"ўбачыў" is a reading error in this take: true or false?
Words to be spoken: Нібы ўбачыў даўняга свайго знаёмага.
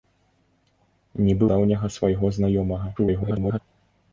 true